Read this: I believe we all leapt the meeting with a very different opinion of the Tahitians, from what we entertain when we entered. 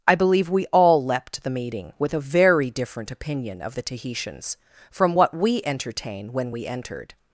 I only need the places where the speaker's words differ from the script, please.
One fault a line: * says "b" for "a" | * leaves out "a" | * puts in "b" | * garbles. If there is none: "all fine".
all fine